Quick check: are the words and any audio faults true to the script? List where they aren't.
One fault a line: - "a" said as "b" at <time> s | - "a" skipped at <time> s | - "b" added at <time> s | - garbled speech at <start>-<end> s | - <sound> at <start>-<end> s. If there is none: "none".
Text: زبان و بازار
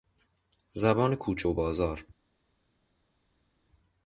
- "کوچه" added at 1.1 s